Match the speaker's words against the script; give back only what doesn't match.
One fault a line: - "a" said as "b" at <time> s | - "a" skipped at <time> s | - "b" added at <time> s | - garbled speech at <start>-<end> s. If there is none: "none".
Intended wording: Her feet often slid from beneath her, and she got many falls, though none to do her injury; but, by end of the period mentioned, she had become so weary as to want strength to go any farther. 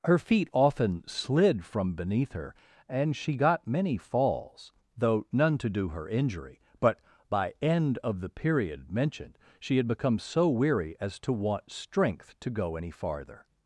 none